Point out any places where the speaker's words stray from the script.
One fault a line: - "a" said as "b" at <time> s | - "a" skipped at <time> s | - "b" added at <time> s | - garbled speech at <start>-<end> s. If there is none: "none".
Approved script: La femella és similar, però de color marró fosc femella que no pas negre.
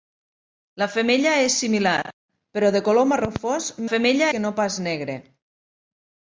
none